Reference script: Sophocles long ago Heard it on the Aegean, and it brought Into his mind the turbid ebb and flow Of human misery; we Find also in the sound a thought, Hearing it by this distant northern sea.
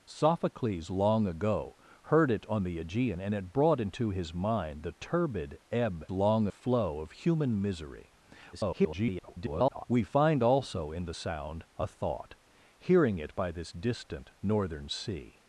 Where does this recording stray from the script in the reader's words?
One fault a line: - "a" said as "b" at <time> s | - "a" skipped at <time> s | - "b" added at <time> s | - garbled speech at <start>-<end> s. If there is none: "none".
- "and" said as "long" at 6.1 s
- garbled speech at 8.5-9.9 s